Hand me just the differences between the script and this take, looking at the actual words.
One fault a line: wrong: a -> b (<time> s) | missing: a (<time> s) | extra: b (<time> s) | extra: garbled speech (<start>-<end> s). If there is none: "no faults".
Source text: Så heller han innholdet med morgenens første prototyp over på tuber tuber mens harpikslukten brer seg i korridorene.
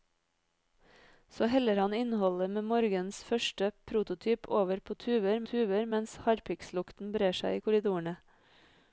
no faults